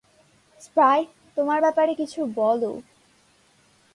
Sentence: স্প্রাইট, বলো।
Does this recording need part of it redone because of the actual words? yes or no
yes